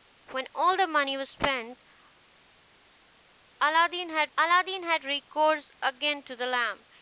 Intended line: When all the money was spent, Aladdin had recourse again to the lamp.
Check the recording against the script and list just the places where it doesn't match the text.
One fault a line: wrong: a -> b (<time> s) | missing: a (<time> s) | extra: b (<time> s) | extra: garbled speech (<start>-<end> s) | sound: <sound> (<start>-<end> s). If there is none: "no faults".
extra: Aladdin had (4.4 s)